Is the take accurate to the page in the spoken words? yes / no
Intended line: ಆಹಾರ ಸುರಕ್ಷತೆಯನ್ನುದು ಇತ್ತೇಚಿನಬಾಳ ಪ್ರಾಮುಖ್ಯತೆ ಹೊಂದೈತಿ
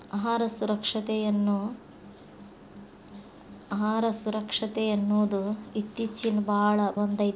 no